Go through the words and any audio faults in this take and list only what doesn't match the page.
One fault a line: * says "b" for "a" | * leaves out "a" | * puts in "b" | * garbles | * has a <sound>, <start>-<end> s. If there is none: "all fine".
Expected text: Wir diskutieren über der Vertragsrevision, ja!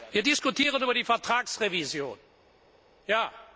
* says "die" for "der"